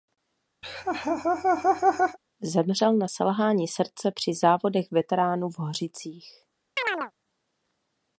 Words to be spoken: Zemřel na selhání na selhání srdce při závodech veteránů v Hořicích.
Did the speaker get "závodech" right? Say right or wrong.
right